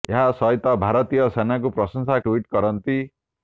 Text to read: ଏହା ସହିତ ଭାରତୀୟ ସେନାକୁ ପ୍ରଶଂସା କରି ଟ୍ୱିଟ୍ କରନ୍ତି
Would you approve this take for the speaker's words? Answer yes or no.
no